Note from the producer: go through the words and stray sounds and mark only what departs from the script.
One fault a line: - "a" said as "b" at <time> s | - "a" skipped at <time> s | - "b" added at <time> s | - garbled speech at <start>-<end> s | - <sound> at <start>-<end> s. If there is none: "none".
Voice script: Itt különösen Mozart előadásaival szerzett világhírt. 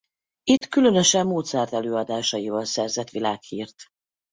- dropout at 0.6-0.6 s